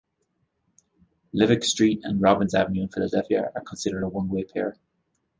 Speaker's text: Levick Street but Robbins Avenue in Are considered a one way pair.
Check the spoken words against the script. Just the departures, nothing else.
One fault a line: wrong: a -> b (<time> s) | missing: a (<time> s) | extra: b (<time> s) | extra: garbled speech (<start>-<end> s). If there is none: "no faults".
wrong: but -> and (2.0 s)
extra: Philadelphia (2.9 s)